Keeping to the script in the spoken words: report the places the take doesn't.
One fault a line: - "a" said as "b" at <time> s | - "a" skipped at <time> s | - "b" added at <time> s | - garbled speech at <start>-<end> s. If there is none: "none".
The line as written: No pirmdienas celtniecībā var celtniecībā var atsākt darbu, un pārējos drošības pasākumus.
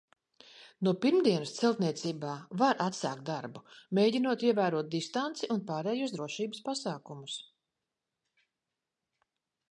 - "celtniecībā var atsākt darbu" said as "atsākt darbu mēģinot ievērot distanci" at 2.9 s